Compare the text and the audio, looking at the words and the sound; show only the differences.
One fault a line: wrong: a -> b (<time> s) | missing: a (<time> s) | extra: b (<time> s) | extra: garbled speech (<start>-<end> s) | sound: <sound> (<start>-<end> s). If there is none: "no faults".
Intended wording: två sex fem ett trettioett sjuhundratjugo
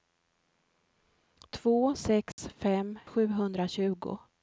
sound: dropout (2.3-2.4 s)
missing: ett trettioett (3.0 s)